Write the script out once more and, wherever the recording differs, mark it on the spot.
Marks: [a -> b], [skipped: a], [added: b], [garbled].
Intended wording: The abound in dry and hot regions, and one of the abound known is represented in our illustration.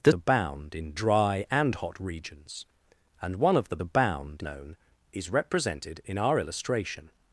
The abound in dry and hot regions, and one of the abound known is represented in our illustration.